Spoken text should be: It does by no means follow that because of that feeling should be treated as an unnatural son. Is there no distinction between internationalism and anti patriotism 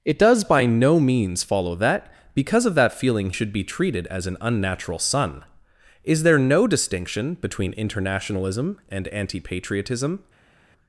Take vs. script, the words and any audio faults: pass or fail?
pass